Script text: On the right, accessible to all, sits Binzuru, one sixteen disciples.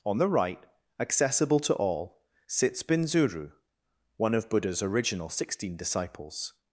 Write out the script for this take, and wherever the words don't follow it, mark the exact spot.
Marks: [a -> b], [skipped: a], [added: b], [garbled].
On the right, accessible to all, sits Binzuru, one [added: of Buddha's original] sixteen disciples.